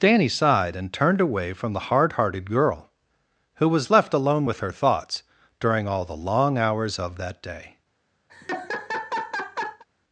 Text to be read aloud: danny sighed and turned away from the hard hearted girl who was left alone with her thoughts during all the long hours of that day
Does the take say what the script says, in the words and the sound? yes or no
no